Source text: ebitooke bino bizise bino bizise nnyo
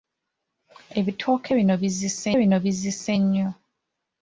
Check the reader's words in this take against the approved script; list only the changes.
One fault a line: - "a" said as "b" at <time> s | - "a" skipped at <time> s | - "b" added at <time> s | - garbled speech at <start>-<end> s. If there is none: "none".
none